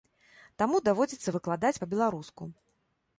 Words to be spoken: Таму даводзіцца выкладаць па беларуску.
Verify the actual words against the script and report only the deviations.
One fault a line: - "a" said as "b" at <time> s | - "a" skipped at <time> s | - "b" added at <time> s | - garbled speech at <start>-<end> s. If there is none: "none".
none